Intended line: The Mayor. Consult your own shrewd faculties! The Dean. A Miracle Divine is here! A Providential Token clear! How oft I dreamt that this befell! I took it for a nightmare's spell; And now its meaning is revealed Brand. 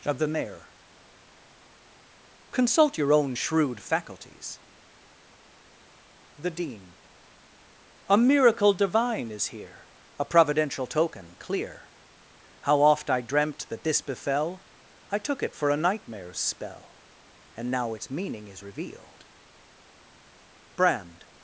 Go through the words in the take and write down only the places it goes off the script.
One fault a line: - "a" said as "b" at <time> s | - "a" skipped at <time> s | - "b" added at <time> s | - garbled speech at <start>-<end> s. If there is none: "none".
- "of" added at 0.1 s